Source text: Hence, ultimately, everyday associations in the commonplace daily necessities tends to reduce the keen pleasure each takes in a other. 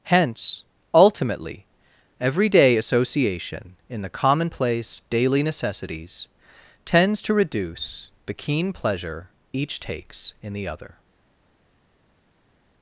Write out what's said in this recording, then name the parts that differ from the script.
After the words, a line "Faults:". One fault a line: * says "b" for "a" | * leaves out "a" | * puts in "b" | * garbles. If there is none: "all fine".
Hence, ultimately, everyday association in the commonplace daily necessities tends to reduce the keen pleasure each takes in the other.
Faults:
* says "association" for "associations"
* says "the" for "a"